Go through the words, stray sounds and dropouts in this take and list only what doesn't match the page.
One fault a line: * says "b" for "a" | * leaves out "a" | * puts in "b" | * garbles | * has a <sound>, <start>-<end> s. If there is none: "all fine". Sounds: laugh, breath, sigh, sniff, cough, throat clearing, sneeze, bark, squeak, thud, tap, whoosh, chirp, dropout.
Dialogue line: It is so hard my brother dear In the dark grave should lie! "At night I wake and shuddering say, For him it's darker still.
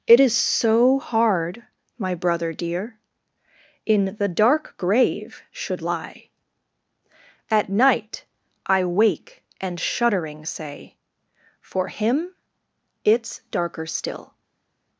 all fine